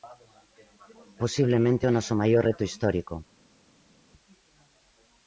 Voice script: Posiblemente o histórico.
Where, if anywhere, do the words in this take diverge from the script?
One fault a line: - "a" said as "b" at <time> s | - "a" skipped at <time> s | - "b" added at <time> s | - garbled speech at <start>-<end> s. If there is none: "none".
- "noso maior reto" added at 2.0 s